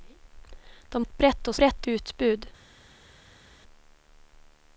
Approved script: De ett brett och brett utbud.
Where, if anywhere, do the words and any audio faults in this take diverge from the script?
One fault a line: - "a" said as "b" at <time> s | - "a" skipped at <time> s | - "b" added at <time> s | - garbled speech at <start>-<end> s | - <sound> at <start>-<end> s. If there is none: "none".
none